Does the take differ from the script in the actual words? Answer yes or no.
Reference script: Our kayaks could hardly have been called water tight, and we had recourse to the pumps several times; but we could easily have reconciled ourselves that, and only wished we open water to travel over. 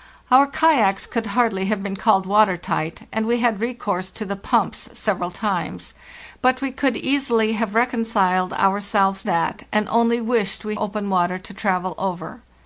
no